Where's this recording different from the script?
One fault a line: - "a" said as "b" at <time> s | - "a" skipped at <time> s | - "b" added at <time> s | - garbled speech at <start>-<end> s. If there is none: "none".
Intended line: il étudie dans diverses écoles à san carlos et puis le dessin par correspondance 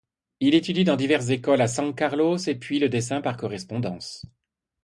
none